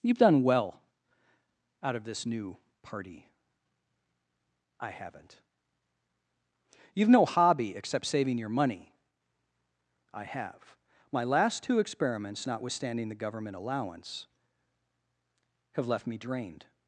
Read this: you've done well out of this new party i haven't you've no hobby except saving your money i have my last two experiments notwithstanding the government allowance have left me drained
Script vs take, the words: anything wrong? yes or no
no